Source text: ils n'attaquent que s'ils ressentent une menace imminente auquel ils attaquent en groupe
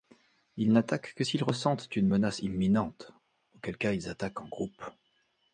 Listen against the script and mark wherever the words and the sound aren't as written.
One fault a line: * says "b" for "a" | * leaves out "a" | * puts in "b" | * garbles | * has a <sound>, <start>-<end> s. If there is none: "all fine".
* puts in "cas"